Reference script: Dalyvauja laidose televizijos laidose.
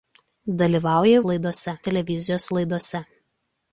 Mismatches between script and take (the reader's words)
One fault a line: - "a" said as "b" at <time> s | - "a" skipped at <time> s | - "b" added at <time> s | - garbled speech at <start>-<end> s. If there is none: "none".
none